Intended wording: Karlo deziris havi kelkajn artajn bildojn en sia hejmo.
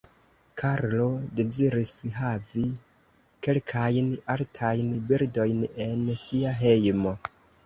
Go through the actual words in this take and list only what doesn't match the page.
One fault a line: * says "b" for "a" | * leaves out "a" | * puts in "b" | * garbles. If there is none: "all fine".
all fine